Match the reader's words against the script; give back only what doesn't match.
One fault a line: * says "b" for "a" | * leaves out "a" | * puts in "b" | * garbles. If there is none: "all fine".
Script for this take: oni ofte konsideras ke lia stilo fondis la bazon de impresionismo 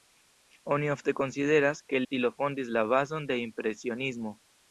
* leaves out "lia"